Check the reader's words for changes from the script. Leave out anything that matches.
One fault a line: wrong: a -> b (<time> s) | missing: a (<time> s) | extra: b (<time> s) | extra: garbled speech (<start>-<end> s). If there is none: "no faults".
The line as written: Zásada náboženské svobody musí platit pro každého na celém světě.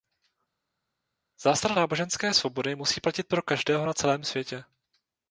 no faults